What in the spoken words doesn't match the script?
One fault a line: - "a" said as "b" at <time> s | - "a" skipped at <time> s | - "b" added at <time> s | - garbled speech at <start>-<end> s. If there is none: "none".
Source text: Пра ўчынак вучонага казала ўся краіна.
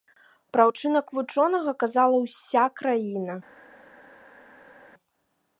none